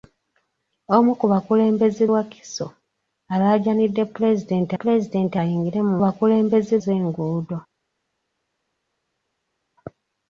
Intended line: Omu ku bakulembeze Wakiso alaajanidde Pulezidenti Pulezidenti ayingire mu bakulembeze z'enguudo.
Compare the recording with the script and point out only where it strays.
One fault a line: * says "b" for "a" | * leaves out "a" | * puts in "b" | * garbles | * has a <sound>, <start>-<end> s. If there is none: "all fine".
all fine